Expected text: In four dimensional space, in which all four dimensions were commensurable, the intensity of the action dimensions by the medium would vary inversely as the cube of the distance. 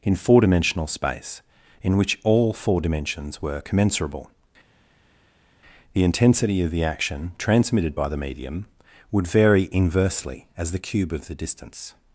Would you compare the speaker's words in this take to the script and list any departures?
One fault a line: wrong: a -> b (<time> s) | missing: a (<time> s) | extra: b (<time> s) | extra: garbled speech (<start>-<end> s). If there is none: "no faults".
wrong: dimensions -> transmitted (7.4 s)